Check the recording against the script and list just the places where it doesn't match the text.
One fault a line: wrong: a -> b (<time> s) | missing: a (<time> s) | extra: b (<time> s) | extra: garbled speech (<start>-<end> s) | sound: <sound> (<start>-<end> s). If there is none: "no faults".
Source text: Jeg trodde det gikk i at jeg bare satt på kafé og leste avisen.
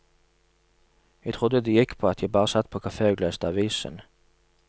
wrong: i -> på (2.0 s)